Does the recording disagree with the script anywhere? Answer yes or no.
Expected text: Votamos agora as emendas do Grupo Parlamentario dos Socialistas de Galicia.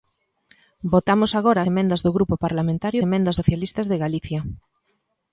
yes